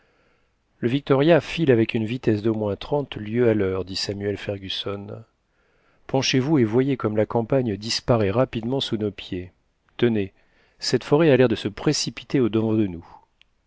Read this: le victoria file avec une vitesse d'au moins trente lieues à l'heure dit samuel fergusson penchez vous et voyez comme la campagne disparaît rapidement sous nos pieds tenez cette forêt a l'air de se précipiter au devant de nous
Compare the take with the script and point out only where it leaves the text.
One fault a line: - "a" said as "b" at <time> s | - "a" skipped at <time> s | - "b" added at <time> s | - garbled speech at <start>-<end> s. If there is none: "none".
none